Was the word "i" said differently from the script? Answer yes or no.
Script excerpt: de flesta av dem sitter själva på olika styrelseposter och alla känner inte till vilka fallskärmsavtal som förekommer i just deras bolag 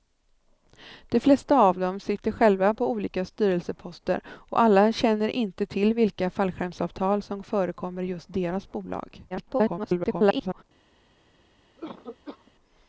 no